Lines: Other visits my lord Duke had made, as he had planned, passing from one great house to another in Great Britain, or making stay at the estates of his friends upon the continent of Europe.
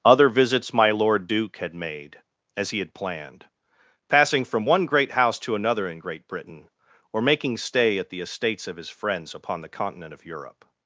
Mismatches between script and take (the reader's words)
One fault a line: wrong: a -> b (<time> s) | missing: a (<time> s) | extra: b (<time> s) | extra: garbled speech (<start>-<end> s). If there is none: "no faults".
no faults